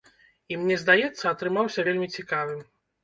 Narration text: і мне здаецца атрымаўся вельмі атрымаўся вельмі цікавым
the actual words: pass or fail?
fail